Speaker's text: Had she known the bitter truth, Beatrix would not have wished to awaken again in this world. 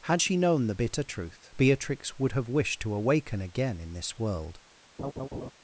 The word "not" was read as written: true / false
false